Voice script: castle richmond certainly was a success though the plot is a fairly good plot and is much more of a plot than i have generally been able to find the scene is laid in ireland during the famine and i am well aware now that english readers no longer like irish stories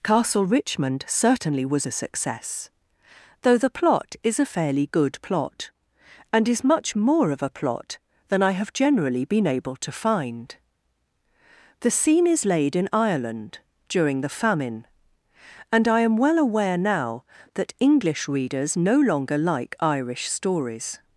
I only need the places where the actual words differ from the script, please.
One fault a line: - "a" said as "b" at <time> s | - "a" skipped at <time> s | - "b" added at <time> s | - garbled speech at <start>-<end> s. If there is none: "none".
none